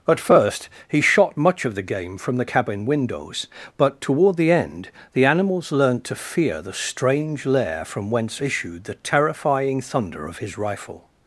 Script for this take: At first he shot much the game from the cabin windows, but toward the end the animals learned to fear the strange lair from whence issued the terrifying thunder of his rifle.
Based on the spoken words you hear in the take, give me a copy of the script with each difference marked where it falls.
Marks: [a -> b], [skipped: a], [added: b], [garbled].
At first he shot much [added: of] the game from the cabin windows, but toward the end the animals learned to fear the strange lair from whence issued the terrifying thunder of his rifle.